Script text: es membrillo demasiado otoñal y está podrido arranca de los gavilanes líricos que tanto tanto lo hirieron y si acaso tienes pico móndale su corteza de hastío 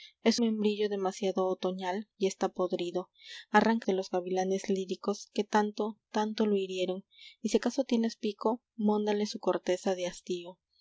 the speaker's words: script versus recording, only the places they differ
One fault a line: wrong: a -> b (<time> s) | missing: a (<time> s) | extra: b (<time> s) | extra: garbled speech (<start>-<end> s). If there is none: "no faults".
no faults